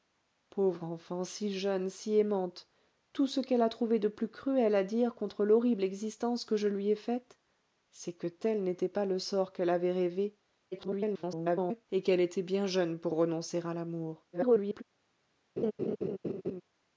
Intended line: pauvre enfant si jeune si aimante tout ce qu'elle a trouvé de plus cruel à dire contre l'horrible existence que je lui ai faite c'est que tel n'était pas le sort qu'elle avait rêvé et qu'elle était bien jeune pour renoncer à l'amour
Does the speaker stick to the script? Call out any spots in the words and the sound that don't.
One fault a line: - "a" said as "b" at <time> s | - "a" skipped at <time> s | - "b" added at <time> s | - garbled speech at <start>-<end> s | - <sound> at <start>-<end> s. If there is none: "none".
- garbled speech at 10.7-11.9 s
- garbled speech at 14.3-14.8 s
- laugh at 15.6-16.6 s